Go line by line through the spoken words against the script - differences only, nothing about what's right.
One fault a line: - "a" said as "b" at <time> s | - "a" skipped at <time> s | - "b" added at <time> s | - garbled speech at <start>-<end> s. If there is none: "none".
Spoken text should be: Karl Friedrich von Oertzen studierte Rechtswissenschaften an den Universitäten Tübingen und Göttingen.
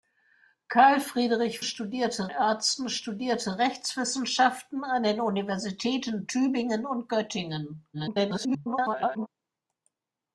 - "von" said as "studierte" at 1.6 s
- garbled speech at 7.9-9.3 s